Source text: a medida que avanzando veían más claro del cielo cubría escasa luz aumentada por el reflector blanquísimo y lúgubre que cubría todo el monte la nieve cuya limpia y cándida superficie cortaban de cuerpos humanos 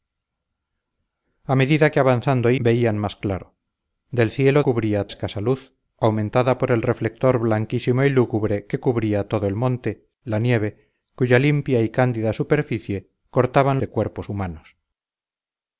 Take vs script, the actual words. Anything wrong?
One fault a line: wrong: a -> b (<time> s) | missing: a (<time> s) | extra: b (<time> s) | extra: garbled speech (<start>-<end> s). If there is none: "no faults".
no faults